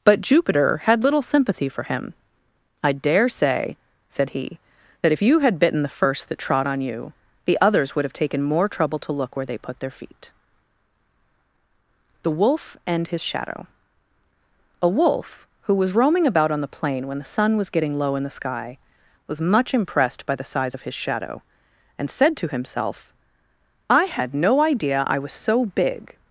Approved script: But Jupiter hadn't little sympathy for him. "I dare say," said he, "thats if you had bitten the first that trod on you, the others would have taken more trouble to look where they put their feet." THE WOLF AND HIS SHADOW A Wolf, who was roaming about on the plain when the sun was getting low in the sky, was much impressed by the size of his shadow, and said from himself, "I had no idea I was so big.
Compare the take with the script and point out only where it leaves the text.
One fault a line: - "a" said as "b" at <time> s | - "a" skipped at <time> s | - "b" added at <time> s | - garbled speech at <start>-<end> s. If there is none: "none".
- "hadn't" said as "had" at 0.8 s
- "thats" said as "that" at 5.0 s
- "from" said as "to" at 22.4 s